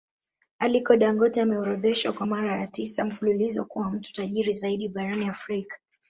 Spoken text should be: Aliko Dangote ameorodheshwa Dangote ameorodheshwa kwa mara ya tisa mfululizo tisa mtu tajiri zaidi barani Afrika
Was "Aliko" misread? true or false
false